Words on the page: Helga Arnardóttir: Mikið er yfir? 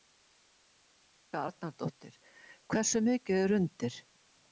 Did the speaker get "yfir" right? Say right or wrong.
wrong